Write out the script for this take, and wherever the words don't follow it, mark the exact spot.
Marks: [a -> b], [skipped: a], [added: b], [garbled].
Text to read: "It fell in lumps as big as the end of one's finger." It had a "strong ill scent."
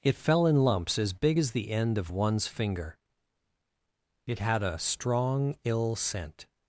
"It fell in lumps as big as the end of one's finger." It had a "strong ill scent."